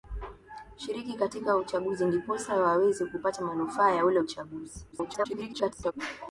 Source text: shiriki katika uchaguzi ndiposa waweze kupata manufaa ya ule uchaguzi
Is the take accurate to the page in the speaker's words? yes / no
no